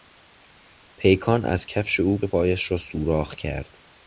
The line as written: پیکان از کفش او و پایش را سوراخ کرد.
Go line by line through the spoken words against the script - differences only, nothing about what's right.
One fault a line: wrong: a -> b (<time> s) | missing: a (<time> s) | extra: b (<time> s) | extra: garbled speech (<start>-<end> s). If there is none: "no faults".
no faults